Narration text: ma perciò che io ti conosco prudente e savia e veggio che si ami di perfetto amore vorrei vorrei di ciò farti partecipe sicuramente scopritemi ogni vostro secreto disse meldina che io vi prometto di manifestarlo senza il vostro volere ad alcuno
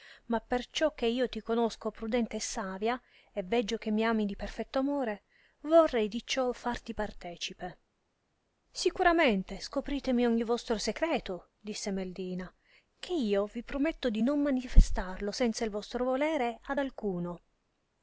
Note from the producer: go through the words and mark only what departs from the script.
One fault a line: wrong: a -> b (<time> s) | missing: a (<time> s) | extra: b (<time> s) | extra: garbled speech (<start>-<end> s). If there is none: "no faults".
wrong: si -> mi (3.9 s)
missing: vorrei (6.1 s)
extra: non (14.2 s)